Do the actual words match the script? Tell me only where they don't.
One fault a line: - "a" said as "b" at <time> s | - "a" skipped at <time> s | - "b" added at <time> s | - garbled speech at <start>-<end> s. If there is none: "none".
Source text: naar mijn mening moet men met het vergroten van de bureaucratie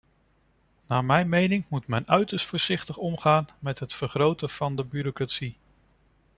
- "uiterst voorzichtig omgaan" added at 2.1 s